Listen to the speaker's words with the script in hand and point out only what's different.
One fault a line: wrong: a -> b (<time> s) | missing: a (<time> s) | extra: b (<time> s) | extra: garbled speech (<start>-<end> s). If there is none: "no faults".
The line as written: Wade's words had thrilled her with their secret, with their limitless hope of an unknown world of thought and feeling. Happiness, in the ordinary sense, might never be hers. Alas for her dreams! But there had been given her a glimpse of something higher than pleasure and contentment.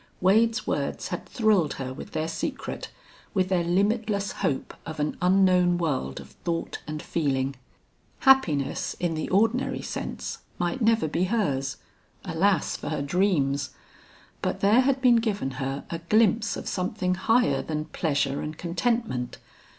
no faults